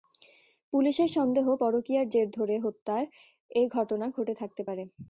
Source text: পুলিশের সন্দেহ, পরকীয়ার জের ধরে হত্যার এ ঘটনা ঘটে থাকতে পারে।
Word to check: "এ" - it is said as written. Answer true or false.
true